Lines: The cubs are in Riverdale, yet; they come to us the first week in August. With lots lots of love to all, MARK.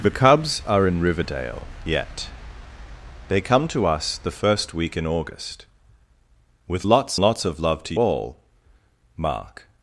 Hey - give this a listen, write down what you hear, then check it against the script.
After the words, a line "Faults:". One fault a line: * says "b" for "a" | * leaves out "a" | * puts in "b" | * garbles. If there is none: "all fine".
The cubs are in Riverdale, yet; they come to us the first week in August. With lots lots of love to all, MARK.
Faults:
all fine